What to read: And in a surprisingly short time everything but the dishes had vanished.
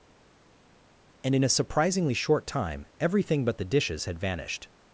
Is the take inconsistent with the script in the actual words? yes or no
no